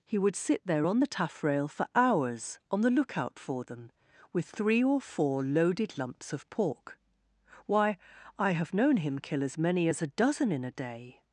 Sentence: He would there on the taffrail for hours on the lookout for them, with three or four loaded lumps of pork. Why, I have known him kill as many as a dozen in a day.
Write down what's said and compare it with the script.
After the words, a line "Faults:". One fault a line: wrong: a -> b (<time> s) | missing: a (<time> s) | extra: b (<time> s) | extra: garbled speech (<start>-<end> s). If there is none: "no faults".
He would sit there on the taffrail for hours on the lookout for them, with three or four loaded lumps of pork. Why, I have known him kill as many as a dozen in a day.
Faults:
extra: sit (0.3 s)